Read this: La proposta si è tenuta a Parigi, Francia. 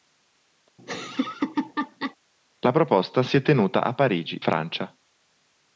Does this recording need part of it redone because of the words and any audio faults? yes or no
yes